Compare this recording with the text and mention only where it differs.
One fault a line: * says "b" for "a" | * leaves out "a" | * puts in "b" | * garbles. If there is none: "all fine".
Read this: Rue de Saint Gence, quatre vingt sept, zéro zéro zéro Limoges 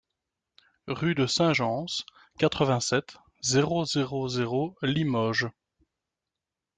all fine